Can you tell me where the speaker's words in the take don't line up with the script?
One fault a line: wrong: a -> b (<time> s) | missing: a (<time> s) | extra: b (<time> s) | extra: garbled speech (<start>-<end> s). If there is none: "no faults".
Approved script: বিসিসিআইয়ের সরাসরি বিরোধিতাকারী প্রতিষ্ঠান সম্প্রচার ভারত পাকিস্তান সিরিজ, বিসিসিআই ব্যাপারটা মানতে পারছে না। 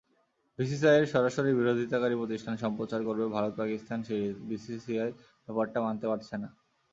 extra: করবে (3.1 s)